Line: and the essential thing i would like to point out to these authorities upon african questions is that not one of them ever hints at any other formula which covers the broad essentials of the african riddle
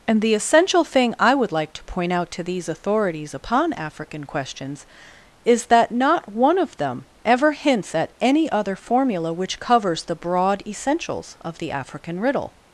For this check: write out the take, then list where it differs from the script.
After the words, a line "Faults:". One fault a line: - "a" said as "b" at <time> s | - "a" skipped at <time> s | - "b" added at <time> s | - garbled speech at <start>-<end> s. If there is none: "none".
and the essential thing i would like to point out to these authorities upon african questions is that not one of them ever hints at any other formula which covers the broad essentials of the african riddle
Faults:
none